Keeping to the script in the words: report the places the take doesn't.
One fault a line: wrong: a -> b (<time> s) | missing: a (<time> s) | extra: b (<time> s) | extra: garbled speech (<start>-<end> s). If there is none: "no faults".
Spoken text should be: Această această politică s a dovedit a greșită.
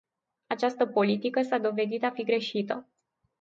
missing: această (0.8 s)
extra: fi (2.1 s)